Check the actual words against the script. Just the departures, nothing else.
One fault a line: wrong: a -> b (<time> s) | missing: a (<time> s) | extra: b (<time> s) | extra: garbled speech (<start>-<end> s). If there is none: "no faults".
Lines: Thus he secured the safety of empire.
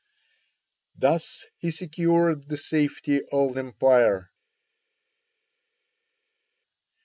no faults